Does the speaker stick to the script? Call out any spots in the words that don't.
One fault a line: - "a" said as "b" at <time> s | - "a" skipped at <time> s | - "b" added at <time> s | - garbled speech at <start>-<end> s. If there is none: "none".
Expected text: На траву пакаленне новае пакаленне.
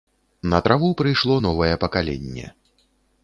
- "пакаленне" said as "прыйшло" at 1.0 s